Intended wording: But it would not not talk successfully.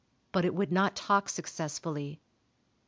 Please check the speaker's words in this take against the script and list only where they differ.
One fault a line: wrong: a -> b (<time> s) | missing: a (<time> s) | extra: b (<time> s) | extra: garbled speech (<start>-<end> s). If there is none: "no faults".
missing: not (0.9 s)